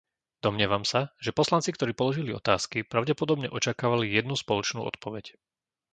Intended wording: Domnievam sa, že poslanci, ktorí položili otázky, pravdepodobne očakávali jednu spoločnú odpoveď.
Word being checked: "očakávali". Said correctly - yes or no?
yes